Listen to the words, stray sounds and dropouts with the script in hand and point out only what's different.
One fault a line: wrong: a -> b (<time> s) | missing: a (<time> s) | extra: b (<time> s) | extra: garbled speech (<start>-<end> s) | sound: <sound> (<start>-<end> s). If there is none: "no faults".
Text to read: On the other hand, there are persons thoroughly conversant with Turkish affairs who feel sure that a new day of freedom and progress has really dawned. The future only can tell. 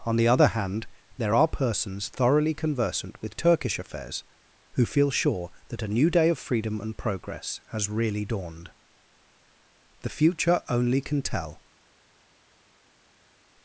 no faults